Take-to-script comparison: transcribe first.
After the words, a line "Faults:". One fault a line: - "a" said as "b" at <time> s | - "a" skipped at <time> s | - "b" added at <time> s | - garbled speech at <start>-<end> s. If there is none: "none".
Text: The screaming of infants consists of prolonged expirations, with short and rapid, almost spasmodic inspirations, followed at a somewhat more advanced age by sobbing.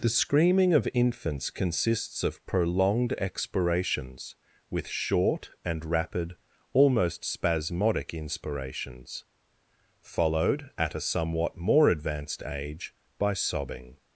The screaming of infants consists of prolonged expirations, with short and rapid, almost spasmodic inspirations, followed at a somewhat more advanced age by sobbing.
Faults:
none